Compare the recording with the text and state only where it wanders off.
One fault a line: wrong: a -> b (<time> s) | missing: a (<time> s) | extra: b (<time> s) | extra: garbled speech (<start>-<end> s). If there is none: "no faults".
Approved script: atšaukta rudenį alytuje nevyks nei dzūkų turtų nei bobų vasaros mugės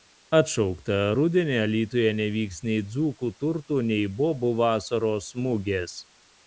no faults